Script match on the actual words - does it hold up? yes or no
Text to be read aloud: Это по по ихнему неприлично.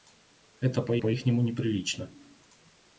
yes